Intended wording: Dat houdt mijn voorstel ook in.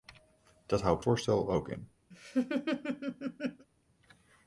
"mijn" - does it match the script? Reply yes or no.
no